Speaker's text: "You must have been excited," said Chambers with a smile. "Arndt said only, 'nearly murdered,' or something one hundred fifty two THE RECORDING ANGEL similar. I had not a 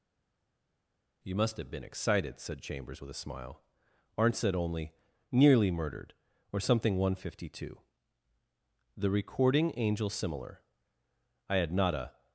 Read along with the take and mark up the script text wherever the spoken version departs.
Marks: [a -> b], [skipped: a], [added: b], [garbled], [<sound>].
"You must have been excited," said Chambers with a smile. "Arndt said only, 'nearly murdered,' or something one hundred fifty two THE RECORDING ANGEL similar. I had not a